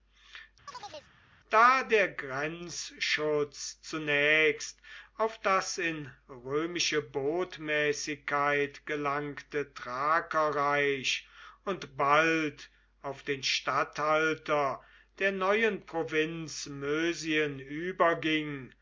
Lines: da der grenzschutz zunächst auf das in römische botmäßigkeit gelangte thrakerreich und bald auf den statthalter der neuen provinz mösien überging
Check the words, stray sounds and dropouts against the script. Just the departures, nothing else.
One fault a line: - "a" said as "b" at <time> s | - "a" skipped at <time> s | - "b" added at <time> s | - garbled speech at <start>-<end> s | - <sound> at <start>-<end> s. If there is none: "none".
- chirp at 0.7-1.1 s